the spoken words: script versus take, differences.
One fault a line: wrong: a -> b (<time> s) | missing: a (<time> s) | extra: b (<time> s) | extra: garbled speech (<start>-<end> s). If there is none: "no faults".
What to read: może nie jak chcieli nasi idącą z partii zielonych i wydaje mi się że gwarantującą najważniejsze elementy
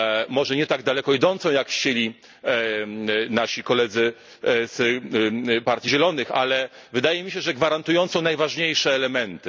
extra: tak daleko idącą (0.7 s)
wrong: idącą -> koledzy (3.6 s)
wrong: i -> ale (6.3 s)